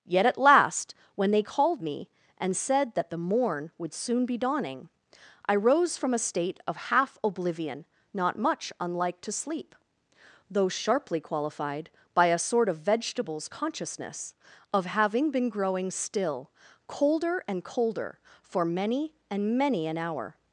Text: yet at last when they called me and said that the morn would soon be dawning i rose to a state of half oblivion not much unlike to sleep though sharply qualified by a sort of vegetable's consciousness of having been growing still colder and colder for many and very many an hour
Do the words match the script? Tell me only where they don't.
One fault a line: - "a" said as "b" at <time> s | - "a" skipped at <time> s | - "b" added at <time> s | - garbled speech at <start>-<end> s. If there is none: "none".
- "to" said as "from" at 6.0 s
- "very" skipped at 19.6 s